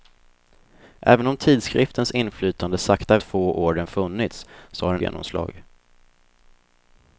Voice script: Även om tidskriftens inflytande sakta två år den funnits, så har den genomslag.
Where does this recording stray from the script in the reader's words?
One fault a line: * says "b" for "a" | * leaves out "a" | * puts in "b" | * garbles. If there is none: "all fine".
all fine